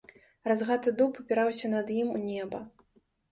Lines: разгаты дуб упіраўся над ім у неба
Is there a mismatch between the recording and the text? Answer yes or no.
no